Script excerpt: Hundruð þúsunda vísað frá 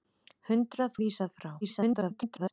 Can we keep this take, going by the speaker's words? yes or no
no